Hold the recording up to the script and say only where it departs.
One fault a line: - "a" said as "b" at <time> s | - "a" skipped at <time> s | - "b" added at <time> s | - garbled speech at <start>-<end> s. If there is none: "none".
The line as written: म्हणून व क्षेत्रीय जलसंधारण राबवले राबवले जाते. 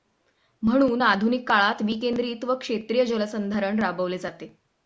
- "आधुनिक काळात विकेंद्रित" added at 1.0 s
- "राबवले" skipped at 4.2 s